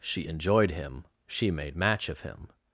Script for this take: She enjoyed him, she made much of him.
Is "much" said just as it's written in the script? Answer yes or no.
no